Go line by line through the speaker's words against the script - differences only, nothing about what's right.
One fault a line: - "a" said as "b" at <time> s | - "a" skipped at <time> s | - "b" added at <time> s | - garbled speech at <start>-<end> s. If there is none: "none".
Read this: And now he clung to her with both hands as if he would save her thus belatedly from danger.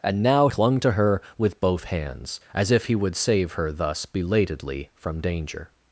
- "he" skipped at 0.5 s